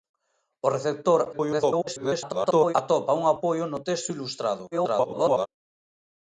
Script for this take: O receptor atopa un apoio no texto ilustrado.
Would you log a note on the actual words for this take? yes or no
yes